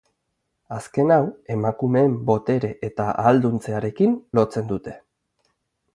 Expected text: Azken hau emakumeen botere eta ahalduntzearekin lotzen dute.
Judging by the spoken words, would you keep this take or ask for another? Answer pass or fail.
pass